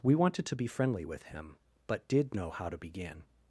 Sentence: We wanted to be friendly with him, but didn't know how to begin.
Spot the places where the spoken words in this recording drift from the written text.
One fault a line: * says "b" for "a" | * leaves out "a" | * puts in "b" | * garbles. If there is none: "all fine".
* says "did" for "didn't"